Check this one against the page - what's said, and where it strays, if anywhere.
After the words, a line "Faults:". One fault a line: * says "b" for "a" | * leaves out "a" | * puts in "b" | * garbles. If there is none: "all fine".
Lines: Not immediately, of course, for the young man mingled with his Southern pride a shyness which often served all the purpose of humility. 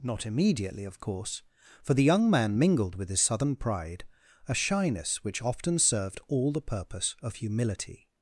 Not immediately, of course, for the young man mingled with his Southern pride a shyness which often served all the purpose of humility.
Faults:
all fine